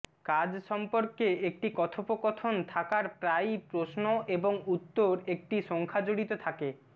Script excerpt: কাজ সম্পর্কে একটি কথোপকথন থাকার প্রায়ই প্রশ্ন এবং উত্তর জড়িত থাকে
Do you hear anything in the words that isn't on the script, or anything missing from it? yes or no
yes